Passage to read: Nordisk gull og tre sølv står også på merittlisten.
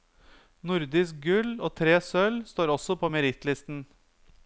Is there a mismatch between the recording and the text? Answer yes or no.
no